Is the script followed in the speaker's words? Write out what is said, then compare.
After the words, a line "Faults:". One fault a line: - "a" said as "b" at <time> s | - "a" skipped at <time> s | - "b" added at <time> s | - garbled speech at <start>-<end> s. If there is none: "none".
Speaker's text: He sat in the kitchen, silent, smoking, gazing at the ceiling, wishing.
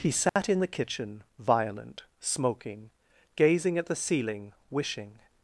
He sat in the kitchen, violent, smoking, gazing at the ceiling, wishing.
Faults:
- "silent" said as "violent" at 1.4 s